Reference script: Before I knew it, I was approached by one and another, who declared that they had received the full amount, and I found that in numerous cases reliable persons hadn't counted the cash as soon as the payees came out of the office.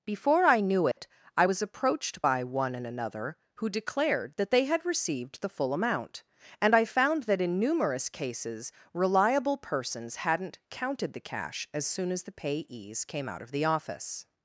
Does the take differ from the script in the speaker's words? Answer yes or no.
no